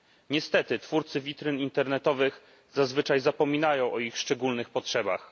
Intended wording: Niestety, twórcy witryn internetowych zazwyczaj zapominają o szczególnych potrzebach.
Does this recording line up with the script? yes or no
no